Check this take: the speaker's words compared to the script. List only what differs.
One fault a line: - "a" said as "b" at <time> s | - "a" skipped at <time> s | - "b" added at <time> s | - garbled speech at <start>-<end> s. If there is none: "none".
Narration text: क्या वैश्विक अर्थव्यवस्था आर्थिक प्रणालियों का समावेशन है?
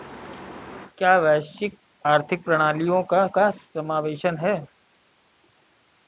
- "अर्थव्यवस्था" skipped at 1.8 s
- "का" added at 3.3 s